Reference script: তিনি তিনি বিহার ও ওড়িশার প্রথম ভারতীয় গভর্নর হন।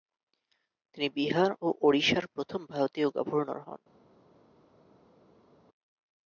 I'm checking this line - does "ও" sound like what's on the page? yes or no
yes